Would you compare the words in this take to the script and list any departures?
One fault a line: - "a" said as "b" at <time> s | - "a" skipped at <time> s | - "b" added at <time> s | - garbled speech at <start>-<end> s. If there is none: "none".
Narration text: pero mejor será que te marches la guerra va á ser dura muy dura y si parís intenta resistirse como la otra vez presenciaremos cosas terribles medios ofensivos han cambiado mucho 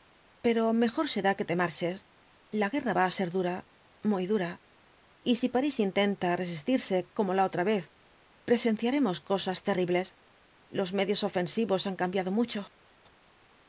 - "los" added at 10.8 s